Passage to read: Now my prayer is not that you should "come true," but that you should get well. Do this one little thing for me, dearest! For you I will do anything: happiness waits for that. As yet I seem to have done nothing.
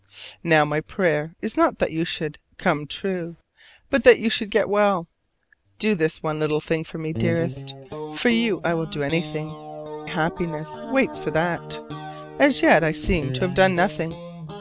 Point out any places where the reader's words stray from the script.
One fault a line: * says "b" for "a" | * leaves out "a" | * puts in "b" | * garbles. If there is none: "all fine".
all fine